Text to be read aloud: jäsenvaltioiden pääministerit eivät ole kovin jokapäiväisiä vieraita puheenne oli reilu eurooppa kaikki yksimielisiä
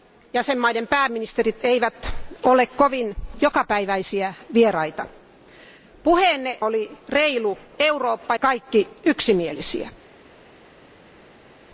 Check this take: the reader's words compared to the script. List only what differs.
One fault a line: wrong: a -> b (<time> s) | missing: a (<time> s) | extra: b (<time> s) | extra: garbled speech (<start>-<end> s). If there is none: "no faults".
no faults